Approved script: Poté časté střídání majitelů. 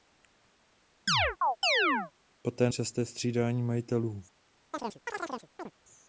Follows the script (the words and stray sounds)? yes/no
no